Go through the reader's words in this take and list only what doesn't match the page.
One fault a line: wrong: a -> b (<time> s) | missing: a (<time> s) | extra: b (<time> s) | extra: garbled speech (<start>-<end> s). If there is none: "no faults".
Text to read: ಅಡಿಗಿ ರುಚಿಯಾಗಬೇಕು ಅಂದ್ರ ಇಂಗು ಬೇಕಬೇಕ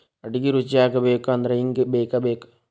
no faults